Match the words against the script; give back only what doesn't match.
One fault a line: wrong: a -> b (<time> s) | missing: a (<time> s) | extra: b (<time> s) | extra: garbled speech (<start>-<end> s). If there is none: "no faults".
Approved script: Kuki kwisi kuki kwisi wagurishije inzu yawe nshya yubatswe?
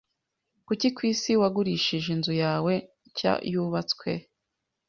missing: kuki kwisi (1.3 s)